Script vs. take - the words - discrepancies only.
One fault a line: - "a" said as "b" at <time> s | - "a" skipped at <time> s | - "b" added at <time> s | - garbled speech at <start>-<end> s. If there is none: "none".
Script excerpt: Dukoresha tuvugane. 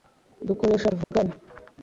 none